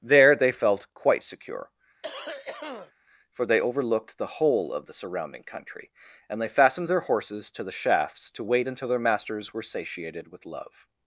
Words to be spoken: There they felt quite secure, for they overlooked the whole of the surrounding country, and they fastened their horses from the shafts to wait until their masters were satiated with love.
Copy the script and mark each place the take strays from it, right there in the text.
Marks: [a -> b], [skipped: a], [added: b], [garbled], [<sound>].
There they felt quite secure, [cough] for they overlooked the whole of the surrounding country, and they fastened their horses [from -> to] the shafts to wait until their masters were satiated with love.